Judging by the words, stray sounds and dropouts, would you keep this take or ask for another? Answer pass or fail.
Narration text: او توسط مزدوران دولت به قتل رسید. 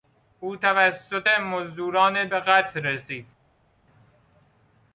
fail